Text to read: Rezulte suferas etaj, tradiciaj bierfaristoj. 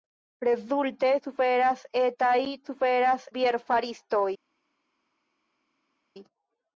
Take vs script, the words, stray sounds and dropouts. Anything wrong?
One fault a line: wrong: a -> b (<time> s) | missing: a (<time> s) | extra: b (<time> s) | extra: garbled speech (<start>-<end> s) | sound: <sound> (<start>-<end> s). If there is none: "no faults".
wrong: tradiciaj -> suferas (2.7 s)